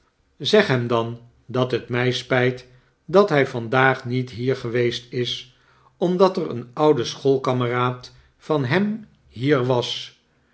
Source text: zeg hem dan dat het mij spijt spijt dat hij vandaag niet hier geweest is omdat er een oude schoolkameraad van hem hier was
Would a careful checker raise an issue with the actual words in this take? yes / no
yes